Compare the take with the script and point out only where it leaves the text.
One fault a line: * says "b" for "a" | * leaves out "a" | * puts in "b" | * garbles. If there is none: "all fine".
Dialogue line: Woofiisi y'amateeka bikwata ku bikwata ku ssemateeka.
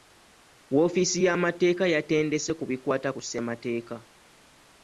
* says "yatendese" for "bikwata"